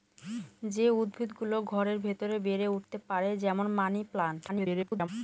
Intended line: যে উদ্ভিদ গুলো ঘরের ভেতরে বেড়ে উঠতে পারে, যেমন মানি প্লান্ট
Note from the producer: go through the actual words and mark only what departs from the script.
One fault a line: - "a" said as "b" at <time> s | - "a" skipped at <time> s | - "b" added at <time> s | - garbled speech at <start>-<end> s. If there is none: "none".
- garbled speech at 4.5-5.1 s